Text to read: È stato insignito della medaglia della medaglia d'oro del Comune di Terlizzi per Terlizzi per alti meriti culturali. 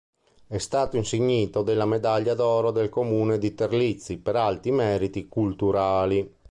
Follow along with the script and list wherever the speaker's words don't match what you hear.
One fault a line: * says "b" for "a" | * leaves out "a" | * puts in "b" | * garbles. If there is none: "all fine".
* leaves out "della medaglia"
* leaves out "Terlizzi per"